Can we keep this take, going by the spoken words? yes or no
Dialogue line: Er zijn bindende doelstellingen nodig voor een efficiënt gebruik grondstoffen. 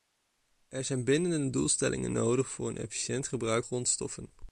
yes